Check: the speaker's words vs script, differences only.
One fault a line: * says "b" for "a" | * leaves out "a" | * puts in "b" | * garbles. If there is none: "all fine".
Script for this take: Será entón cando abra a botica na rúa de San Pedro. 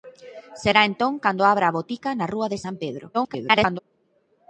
* garbles